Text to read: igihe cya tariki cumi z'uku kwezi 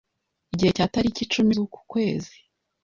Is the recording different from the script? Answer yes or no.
no